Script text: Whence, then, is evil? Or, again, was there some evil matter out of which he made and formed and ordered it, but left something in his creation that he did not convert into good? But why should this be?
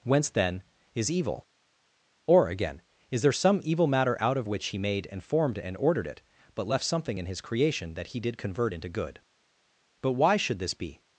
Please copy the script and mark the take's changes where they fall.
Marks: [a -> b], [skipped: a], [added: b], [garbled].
Whence, then, is evil? Or, again, [was -> is] there some evil matter out of which he made and formed and ordered it, but left something in his creation that he did [skipped: not] convert into good? But why should this be?